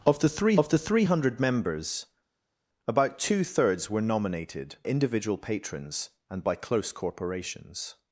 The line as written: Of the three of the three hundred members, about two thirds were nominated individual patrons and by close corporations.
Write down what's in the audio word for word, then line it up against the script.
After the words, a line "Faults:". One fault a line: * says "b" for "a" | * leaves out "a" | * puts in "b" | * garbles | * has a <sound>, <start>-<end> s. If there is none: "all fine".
Of the three of the three hundred members, about two thirds were nominated individual patrons and by close corporations.
Faults:
all fine